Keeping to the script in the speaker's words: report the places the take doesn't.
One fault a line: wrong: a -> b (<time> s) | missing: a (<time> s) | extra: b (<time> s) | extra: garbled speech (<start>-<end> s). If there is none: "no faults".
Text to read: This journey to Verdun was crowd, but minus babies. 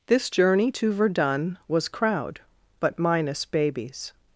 no faults